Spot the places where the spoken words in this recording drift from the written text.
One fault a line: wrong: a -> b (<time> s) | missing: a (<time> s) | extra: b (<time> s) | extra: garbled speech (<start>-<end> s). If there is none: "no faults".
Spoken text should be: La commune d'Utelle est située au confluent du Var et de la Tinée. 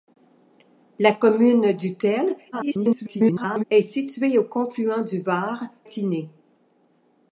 extra: garbled speech (2.5-3.6 s)
missing: et de la (5.6 s)